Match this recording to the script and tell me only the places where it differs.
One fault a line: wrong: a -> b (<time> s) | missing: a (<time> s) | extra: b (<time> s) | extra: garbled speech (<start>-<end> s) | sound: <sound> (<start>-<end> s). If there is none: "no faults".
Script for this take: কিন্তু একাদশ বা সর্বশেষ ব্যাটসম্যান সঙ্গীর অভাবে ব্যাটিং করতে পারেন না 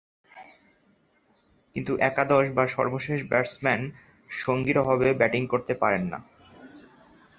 no faults